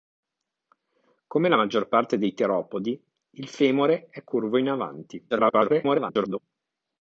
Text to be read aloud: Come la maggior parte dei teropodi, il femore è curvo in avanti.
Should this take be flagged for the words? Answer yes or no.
yes